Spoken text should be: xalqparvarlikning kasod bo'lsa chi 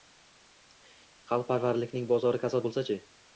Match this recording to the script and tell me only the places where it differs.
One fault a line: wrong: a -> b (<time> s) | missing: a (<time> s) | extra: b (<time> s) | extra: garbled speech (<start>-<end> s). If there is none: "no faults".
extra: bozori (2.1 s)